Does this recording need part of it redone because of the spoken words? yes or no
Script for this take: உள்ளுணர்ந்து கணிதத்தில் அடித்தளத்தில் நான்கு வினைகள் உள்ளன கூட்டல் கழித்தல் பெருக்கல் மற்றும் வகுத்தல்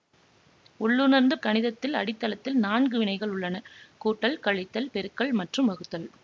no